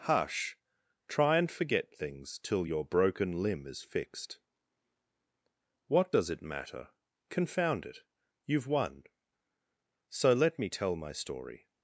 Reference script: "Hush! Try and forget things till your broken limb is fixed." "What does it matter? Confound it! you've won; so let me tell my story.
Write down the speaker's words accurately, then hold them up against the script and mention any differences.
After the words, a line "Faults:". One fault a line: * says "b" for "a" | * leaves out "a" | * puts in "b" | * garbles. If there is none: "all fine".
"Hush! Try and forget things till your broken limb is fixed." "What does it matter? Confound it! you've won; so let me tell my story.
Faults:
all fine